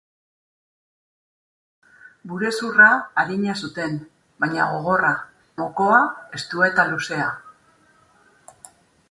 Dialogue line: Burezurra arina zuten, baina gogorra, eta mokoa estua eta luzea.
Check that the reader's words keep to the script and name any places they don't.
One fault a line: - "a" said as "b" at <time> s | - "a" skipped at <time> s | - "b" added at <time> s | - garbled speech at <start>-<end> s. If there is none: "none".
- "eta" skipped at 5.1 s